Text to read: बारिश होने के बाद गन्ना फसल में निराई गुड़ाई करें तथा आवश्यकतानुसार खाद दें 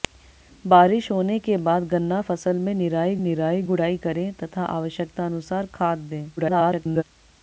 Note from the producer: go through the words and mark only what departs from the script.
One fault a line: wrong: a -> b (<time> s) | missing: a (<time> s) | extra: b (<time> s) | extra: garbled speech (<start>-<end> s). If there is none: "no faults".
extra: निराई (3.2 s)
extra: garbled speech (6.4-7.0 s)